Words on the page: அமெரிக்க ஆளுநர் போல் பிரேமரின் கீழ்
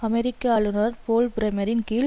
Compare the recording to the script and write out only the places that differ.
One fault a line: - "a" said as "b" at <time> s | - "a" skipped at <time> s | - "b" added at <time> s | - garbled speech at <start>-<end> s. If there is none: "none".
none